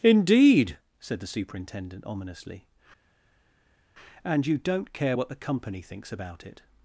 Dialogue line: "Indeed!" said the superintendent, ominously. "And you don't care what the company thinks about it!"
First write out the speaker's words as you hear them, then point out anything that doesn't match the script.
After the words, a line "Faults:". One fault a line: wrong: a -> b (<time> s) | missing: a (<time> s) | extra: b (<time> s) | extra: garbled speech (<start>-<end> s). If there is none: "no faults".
"Indeed!" said the superintendent, ominously. "And you don't care what the company thinks about it!"
Faults:
no faults